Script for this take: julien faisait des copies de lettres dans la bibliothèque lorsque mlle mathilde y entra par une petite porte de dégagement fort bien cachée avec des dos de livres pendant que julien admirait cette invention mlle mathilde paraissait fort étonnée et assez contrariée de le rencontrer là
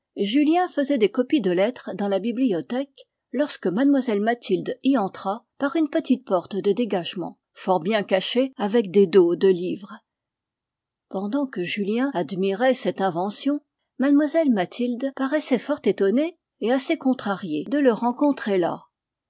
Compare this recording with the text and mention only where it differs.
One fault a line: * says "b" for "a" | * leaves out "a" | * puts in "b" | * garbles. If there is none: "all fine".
all fine